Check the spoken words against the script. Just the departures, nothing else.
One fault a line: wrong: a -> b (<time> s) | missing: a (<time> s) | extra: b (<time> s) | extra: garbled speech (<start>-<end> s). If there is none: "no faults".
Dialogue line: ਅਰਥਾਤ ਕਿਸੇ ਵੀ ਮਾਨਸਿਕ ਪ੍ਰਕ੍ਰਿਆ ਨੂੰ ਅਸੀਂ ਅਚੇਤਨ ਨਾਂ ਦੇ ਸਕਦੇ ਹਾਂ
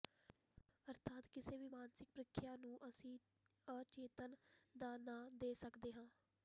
extra: ਦਾ (4.8 s)